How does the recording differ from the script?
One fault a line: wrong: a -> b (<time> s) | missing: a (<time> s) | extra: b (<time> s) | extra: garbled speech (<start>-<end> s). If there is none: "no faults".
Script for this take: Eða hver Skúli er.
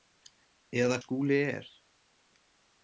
missing: hver (1.0 s)